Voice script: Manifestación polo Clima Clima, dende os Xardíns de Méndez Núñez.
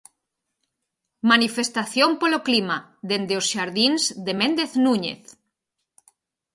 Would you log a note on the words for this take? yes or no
yes